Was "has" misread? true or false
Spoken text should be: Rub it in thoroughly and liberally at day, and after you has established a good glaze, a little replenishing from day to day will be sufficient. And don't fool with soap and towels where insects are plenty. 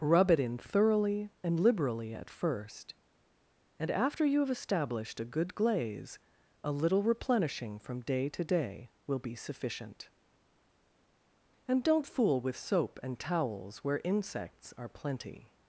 true